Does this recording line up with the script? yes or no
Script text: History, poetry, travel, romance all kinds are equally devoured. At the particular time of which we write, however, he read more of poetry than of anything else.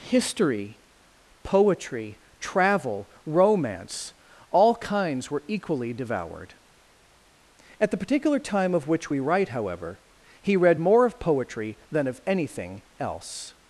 no